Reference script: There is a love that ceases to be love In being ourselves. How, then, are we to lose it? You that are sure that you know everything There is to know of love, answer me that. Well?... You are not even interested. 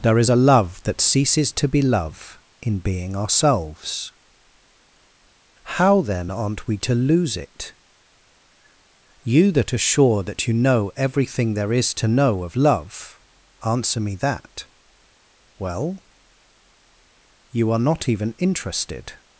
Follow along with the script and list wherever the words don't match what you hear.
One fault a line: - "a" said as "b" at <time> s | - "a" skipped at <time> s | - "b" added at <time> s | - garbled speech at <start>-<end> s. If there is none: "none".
- "are" said as "aren't" at 6.3 s